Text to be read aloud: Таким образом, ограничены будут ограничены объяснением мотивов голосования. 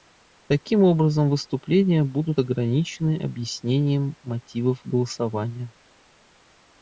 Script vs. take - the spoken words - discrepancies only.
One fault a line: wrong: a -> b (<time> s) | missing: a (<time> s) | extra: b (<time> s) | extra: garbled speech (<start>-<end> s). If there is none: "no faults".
wrong: ограничены -> выступления (1.3 s)